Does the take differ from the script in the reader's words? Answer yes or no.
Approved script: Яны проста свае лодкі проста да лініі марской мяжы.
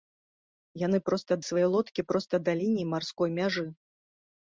no